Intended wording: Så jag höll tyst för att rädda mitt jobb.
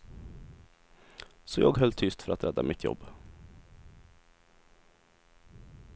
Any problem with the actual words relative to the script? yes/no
no